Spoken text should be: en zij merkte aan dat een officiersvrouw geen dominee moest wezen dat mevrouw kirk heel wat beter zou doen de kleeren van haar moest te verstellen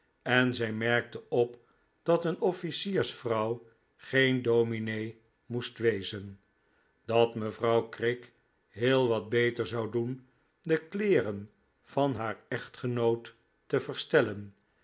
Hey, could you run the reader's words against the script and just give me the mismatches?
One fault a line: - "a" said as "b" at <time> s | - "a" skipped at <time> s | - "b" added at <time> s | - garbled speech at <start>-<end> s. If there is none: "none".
- "aan" said as "op" at 1.3 s
- "moest" said as "echtgenoot" at 12.5 s